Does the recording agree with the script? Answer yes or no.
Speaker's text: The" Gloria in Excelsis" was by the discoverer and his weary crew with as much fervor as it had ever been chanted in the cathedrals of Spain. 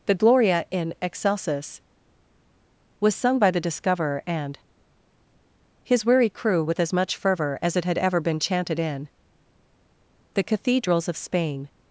no